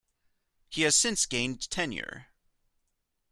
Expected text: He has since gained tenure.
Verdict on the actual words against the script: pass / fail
pass